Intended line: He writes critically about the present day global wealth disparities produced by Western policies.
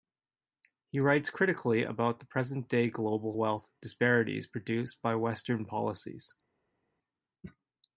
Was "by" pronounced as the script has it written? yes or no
yes